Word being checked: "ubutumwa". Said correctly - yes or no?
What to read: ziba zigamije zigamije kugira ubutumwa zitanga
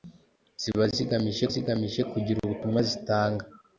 yes